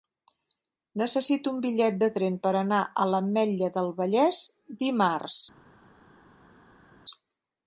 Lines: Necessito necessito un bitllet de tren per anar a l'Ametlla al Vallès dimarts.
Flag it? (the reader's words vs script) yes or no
yes